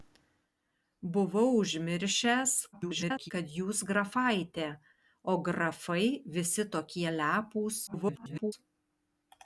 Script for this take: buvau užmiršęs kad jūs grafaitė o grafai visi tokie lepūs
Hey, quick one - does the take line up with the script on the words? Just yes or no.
no